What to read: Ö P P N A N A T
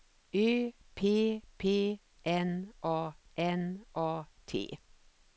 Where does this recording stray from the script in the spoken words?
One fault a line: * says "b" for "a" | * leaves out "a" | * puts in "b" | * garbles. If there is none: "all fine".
all fine